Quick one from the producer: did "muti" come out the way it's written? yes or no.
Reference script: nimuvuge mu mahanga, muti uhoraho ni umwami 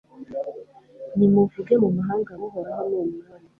no